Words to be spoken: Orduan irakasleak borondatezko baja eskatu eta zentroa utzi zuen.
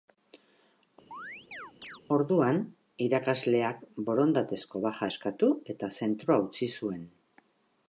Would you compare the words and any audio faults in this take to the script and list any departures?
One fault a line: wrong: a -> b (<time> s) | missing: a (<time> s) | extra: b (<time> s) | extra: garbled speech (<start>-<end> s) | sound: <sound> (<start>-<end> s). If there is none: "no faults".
sound: chirp (1.1-2.0 s)